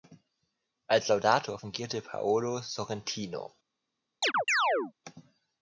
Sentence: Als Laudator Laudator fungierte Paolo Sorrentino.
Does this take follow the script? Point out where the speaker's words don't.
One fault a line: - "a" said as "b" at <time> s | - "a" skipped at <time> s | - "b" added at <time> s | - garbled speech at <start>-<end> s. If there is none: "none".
- "Laudator" skipped at 1.6 s